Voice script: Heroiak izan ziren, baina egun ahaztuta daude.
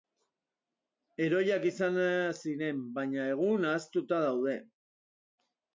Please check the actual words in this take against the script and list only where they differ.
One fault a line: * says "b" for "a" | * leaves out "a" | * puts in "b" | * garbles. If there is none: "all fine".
all fine